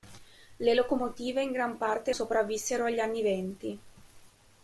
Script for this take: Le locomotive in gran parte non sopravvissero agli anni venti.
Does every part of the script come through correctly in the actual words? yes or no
no